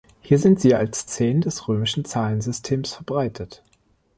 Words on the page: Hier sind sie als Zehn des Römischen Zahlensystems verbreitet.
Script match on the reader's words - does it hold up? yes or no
yes